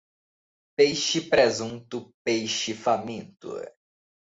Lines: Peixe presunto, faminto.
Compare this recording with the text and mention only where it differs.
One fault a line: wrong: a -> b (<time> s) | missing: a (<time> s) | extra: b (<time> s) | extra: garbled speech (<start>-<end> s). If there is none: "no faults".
extra: peixe (2.2 s)